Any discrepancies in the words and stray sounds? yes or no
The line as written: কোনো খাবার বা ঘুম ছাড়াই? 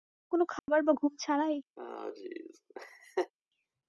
yes